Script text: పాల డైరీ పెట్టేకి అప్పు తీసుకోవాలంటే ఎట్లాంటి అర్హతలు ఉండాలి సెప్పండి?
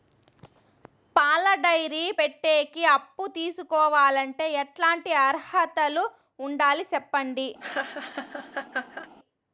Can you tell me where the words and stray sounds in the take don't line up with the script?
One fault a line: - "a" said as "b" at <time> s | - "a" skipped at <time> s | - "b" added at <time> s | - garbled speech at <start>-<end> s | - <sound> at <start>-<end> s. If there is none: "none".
- laugh at 7.6-9.1 s